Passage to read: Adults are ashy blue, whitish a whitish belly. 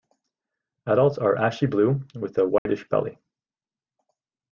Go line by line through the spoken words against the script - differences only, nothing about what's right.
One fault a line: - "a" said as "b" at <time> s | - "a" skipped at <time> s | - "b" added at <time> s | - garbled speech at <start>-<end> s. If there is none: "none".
- "whitish" said as "with" at 2.1 s